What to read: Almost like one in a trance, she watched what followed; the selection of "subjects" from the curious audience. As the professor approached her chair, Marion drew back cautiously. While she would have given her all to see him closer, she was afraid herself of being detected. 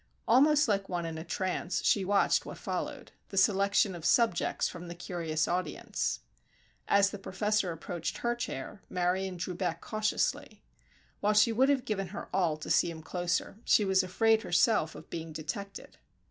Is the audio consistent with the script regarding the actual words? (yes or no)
yes